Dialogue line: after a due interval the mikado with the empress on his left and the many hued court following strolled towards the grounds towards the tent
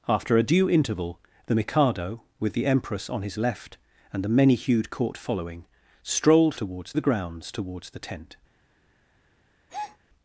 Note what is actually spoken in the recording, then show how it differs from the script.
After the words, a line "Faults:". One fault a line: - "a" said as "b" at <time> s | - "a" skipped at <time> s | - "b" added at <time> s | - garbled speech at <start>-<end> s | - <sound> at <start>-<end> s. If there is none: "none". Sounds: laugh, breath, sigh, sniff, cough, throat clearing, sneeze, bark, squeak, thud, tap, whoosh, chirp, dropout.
after a due interval the mikado with the empress on his left and the many hued court following strolled towards the grounds towards the tent
Faults:
- breath at 9.7-10.0 s